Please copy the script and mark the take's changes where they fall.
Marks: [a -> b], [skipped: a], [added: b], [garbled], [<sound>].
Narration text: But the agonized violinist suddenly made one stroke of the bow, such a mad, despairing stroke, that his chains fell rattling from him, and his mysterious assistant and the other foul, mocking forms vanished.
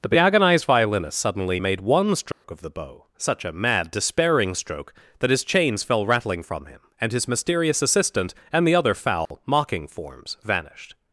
[skipped: But] the agonized violinist suddenly made one stroke [dropout] of the bow, such a mad, despairing stroke, that his chains fell rattling from him, and his mysterious assistant and the other foul, [dropout] mocking forms vanished.